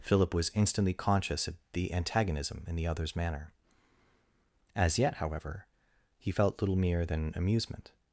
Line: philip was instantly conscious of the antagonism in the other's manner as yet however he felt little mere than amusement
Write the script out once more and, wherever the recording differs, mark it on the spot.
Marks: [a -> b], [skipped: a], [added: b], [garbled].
philip was instantly conscious of the antagonism in the other's manner as yet however he felt little mere than amusement